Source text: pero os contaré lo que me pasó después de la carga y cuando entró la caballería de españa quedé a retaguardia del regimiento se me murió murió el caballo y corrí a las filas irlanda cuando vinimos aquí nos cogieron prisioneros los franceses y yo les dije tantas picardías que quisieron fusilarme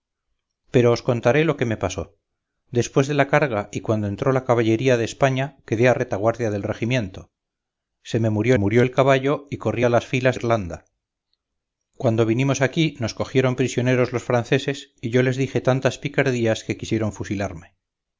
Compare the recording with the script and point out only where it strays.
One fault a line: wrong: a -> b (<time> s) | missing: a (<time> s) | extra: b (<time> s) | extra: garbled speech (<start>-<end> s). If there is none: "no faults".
no faults